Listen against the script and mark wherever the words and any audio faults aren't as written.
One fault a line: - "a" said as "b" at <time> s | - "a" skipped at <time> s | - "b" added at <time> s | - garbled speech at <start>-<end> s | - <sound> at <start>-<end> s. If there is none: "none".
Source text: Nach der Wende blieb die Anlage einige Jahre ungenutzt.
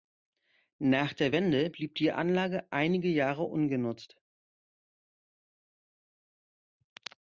none